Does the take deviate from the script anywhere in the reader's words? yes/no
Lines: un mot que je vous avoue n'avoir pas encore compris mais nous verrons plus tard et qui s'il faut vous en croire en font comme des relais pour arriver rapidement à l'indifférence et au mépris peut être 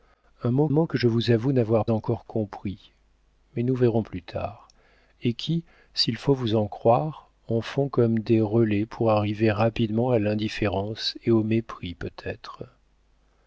yes